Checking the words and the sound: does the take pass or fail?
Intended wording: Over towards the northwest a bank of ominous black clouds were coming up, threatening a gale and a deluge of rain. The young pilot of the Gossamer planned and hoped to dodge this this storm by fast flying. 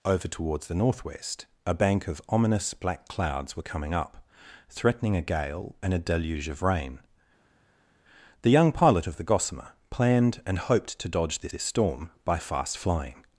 pass